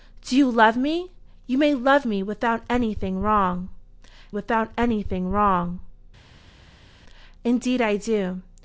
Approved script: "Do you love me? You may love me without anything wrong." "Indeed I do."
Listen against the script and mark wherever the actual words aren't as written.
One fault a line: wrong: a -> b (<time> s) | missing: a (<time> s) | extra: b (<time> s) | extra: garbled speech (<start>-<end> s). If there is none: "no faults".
extra: without anything wrong (4.3 s)